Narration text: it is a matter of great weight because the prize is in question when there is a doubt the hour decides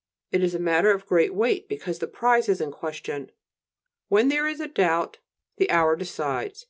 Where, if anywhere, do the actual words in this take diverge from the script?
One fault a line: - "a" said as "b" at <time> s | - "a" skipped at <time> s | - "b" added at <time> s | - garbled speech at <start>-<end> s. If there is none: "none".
none